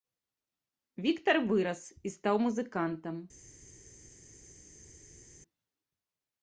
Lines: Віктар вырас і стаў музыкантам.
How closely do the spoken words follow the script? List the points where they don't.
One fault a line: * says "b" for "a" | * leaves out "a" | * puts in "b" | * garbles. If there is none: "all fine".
all fine